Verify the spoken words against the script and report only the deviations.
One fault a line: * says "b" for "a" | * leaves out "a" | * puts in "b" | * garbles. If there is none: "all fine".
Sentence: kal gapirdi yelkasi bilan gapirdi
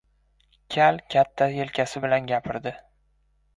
* says "katta" for "gapirdi"